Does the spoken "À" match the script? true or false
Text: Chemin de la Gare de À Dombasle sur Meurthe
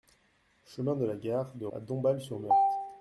true